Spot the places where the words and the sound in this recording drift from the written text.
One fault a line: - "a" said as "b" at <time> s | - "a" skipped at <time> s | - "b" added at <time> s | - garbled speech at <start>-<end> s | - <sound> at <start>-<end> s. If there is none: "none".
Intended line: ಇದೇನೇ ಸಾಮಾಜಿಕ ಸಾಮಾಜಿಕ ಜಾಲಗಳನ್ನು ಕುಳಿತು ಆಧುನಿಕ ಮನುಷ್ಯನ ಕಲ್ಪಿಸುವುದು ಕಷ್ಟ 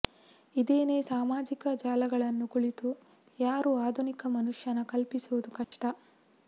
- "ಸಾಮಾಜಿಕ" skipped at 1.7 s
- "ಯಾರು" added at 3.4 s
- dropout at 5.6-5.7 s